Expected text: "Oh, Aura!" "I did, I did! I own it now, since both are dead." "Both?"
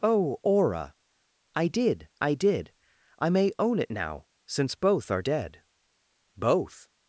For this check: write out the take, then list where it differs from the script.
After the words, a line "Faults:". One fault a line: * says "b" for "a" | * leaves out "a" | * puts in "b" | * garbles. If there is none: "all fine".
"Oh, Aura!" "I did, I did! I may own it now, since both are dead." "Both?"
Faults:
* puts in "may"